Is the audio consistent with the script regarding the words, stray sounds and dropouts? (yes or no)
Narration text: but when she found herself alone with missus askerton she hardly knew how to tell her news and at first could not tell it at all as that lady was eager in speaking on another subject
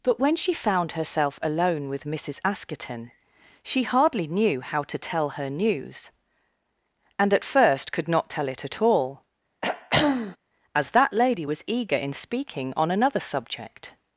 no